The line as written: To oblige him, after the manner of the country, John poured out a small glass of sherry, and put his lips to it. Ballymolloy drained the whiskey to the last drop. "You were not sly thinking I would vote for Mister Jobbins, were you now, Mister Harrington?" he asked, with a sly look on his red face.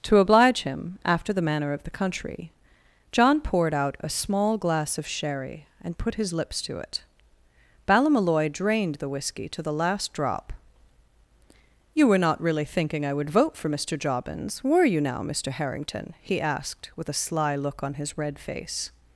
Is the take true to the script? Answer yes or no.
no